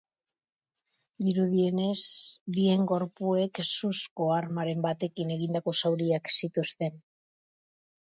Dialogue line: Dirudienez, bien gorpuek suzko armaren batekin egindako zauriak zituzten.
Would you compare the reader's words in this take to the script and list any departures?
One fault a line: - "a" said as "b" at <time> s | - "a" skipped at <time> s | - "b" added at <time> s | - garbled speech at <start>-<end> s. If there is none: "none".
none